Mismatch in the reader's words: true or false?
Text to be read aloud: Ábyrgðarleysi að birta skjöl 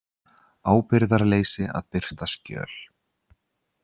false